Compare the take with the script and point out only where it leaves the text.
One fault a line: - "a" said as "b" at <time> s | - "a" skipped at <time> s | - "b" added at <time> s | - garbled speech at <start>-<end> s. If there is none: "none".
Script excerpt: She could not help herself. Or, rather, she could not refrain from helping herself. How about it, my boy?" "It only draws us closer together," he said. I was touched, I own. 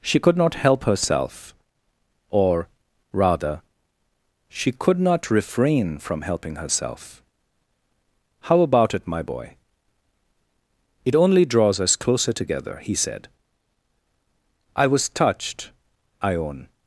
none